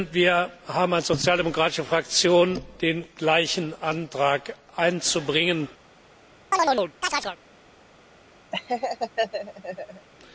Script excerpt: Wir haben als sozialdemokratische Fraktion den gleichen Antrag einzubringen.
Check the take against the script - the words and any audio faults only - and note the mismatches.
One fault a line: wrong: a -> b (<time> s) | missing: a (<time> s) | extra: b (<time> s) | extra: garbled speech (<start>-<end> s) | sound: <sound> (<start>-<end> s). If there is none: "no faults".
sound: chirp (6.5-7.4 s)
sound: laugh (8.5-10.1 s)